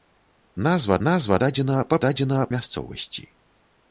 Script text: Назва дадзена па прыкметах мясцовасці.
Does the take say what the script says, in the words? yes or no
no